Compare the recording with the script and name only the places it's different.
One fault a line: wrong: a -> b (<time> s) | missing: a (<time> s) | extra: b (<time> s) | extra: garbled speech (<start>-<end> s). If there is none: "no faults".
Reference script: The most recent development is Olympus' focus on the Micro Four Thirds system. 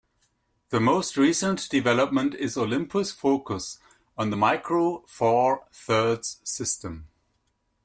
no faults